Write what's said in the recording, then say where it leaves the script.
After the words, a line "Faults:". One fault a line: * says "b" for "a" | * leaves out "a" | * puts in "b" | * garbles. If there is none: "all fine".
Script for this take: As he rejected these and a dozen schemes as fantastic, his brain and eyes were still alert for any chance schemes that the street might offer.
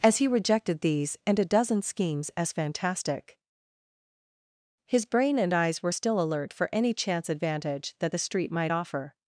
As he rejected these and a dozen schemes as fantastic, his brain and eyes were still alert for any chance advantage that the street might offer.
Faults:
* says "advantage" for "schemes"